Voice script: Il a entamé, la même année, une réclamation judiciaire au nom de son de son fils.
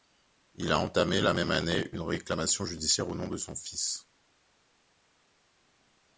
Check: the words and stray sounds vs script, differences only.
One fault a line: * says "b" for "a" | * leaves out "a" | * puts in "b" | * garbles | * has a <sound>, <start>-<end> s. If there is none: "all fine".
* leaves out "de son"